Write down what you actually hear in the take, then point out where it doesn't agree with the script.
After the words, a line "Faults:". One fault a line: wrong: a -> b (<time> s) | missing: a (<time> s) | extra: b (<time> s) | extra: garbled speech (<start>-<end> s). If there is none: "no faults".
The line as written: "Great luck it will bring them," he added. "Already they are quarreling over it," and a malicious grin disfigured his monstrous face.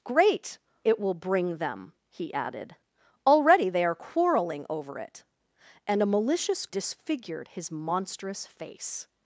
"Great it will bring them," he added. "Already they are quarreling over it," and a malicious disfigured his monstrous face.
Faults:
missing: luck (0.6 s)
missing: grin (6.7 s)